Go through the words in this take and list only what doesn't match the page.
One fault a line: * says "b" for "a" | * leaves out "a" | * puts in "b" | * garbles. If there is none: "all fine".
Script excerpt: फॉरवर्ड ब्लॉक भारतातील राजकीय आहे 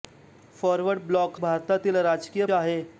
all fine